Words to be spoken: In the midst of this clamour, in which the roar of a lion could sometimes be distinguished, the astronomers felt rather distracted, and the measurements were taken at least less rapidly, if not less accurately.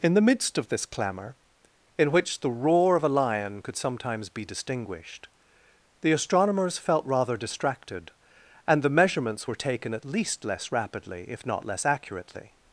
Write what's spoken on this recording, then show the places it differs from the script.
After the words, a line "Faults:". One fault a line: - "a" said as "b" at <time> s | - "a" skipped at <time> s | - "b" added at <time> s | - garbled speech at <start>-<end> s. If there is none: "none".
In the midst of this clamour, in which the roar of a lion could sometimes be distinguished, the astronomers felt rather distracted, and the measurements were taken at least less rapidly, if not less accurately.
Faults:
none